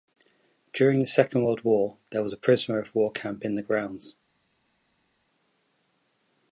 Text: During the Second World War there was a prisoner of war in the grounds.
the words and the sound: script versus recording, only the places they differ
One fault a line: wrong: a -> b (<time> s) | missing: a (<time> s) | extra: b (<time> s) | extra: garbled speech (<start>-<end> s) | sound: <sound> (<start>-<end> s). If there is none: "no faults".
extra: camp (3.1 s)